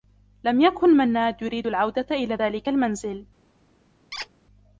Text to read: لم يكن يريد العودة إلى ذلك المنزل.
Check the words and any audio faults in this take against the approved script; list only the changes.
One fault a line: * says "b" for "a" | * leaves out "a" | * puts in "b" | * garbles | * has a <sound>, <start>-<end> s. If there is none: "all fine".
* puts in "منّاد"
* has a squeak, 4.1-4.3 s